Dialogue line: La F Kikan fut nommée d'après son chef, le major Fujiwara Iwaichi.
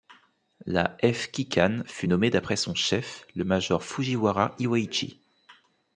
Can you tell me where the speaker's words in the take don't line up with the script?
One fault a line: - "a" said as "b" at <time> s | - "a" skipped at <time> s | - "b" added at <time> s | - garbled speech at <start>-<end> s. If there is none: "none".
none